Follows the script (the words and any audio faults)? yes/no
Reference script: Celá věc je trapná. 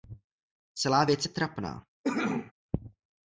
no